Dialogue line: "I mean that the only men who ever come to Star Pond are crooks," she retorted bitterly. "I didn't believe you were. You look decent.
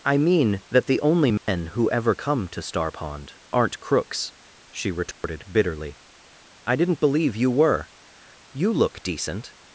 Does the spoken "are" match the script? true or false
false